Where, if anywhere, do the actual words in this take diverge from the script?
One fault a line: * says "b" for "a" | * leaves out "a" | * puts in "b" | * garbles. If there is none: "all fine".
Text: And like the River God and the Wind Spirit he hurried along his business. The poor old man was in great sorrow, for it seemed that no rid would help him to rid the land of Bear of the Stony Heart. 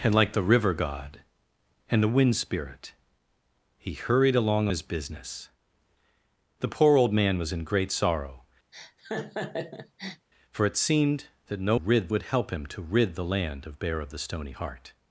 all fine